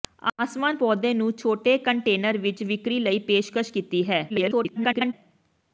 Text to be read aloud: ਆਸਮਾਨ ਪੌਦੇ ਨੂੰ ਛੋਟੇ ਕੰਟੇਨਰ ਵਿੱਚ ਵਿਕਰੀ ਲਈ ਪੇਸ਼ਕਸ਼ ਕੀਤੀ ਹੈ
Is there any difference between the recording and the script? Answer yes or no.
yes